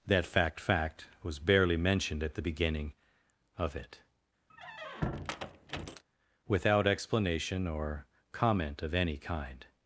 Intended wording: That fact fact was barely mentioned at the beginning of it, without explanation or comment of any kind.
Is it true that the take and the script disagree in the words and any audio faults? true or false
true